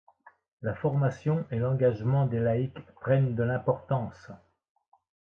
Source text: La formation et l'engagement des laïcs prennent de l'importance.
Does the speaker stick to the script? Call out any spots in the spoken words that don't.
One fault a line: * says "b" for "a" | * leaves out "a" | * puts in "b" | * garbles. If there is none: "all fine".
all fine